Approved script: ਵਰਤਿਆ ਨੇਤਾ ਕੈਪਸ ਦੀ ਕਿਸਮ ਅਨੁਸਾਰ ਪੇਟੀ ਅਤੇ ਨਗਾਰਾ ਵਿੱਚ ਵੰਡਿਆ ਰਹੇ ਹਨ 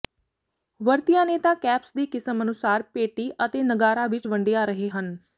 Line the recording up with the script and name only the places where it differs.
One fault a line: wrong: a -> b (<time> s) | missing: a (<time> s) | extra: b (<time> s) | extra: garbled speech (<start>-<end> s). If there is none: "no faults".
no faults